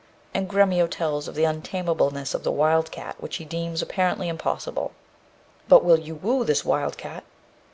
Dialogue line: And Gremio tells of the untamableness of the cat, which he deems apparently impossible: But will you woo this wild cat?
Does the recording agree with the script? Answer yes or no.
no